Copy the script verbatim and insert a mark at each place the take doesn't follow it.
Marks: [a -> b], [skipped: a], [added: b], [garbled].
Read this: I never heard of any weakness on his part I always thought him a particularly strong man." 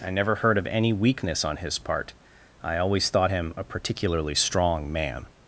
I never heard of any weakness on his part I always thought him a particularly strong man."